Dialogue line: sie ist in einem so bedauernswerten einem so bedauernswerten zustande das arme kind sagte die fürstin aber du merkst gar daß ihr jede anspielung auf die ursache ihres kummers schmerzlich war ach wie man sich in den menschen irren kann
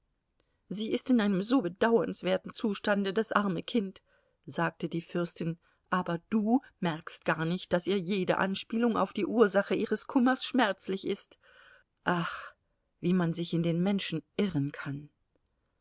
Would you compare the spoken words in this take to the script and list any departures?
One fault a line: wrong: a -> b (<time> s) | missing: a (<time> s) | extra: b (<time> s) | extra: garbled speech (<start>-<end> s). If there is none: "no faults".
missing: einem so bedauernswerten (2.5 s)
extra: nicht (7.5 s)
wrong: war -> ist (11.1 s)